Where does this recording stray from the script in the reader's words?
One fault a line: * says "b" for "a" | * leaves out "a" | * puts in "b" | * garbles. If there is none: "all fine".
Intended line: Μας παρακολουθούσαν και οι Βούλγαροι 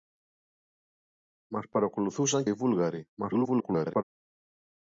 * leaves out "και"
* garbles